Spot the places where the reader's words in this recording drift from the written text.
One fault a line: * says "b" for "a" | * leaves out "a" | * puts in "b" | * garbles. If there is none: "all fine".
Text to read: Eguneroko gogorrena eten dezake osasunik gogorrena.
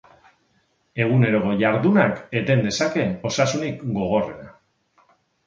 * says "jardunak" for "gogorrena"